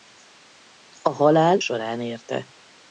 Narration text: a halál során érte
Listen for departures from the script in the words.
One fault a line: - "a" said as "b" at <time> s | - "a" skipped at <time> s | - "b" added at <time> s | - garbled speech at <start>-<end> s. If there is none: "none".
none